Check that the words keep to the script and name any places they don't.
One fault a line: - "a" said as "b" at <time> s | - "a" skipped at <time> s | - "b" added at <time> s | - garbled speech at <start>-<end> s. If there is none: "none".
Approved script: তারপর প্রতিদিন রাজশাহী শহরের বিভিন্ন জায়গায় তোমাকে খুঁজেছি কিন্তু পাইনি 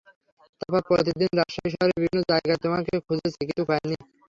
none